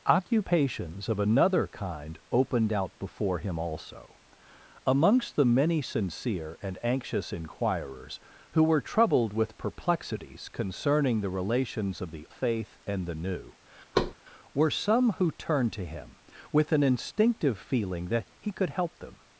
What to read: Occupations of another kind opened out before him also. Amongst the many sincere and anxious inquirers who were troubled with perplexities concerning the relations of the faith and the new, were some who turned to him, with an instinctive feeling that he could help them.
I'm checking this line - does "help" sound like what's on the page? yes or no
yes